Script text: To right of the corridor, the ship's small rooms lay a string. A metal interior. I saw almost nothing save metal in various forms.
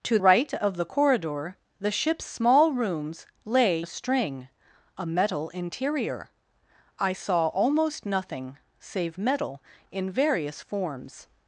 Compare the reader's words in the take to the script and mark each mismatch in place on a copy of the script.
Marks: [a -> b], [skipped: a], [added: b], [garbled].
To right of the corridor, the ship's small rooms lay a string. A metal interior. I saw almost nothing save metal in various forms.